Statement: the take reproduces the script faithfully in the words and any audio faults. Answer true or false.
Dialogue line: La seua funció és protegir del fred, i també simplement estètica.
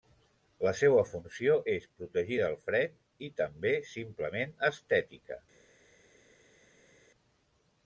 true